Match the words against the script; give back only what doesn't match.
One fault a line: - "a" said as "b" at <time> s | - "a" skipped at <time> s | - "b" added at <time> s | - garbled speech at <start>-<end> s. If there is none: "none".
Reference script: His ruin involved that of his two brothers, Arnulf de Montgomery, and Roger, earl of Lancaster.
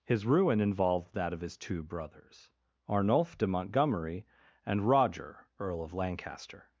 none